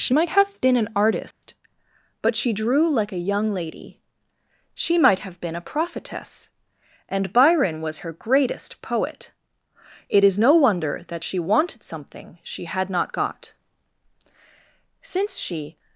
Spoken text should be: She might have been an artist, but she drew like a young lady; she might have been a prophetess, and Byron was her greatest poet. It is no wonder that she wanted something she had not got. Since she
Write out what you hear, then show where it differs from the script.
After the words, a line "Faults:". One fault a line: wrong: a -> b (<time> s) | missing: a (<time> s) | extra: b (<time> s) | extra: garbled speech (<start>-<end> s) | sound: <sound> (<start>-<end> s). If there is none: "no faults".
She might have been an artist, but she drew like a young lady; she might have been a prophetess, and Byron was her greatest poet. It is no wonder that she wanted something she had not got. Since she
Faults:
sound: dropout (1.3-1.4 s)